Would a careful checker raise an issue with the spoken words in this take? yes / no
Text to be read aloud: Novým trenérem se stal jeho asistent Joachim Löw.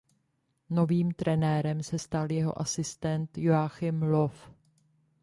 no